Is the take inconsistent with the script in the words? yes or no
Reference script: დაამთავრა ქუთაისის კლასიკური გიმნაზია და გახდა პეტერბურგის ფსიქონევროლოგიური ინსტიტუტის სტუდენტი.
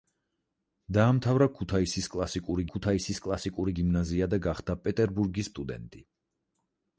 yes